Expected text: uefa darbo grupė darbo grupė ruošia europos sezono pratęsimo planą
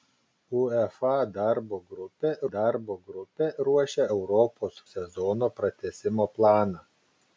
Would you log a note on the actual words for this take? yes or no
no